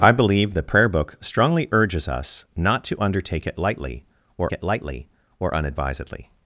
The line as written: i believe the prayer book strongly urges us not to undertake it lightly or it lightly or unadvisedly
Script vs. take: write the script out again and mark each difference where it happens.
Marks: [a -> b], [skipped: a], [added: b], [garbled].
i believe the prayer book strongly urges us not to undertake it lightly or it lightly or unadvisedly